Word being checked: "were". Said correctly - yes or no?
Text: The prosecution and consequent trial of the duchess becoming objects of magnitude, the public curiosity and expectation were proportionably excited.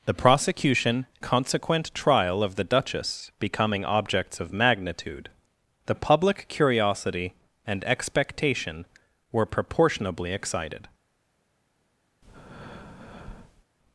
yes